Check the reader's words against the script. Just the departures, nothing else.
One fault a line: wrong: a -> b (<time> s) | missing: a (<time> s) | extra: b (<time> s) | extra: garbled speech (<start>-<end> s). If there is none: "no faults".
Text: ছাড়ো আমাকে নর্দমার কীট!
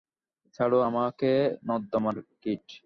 no faults